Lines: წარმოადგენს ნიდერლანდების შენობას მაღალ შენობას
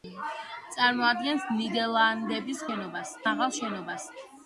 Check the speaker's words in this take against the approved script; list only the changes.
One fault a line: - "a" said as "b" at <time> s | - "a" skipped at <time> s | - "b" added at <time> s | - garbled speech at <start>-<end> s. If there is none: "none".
none